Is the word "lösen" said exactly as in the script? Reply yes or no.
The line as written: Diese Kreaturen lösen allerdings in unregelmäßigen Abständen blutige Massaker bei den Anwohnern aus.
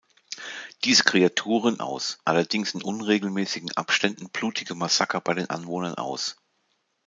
no